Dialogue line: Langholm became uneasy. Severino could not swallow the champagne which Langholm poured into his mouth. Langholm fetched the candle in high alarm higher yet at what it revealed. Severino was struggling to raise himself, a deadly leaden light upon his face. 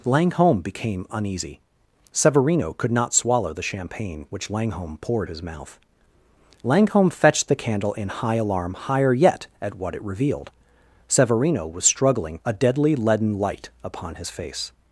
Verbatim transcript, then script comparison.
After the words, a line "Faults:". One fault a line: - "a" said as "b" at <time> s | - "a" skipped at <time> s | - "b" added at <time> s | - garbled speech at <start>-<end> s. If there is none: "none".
Langholm became uneasy. Severino could not swallow the champagne which Langholm poured his mouth. Langholm fetched the candle in high alarm higher yet at what it revealed. Severino was struggling a deadly leaden light upon his face.
Faults:
- "into" skipped at 5.3 s
- "to raise himself" skipped at 12.4 s